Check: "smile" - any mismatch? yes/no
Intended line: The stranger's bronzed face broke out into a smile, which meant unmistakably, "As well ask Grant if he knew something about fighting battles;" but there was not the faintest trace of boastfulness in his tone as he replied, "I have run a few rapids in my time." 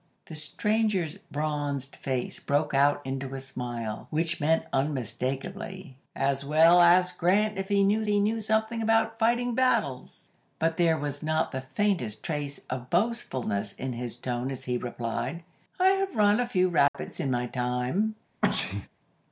no